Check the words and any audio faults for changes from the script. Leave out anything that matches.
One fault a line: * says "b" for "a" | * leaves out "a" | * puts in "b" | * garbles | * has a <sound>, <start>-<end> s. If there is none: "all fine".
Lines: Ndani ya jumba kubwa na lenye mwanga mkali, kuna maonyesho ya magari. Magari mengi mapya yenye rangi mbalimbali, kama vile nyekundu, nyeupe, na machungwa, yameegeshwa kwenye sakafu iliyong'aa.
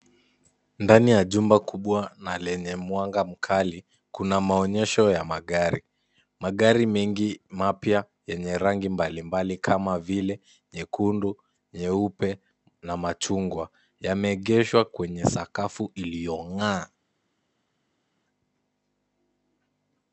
all fine